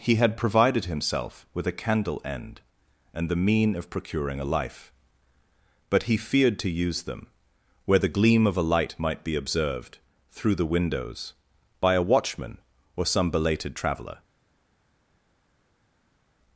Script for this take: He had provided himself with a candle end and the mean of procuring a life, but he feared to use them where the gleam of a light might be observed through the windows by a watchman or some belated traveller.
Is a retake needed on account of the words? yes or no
no